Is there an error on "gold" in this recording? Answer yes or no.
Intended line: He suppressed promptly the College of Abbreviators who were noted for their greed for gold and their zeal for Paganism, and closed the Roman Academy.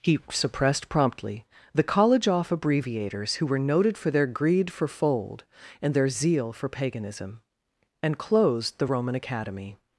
yes